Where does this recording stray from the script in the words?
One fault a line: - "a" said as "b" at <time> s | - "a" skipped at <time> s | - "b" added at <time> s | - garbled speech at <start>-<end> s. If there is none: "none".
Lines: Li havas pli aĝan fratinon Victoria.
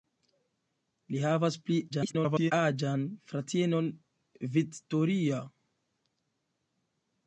- garbled speech at 1.9-2.5 s